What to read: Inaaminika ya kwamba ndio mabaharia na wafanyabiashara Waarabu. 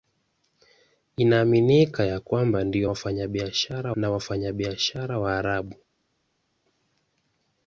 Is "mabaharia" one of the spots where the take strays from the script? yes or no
yes